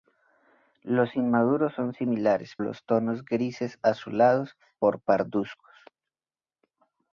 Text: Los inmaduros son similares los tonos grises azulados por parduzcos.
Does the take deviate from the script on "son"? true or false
false